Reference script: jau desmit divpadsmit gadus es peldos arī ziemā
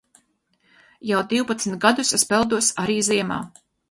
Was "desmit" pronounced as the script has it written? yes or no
no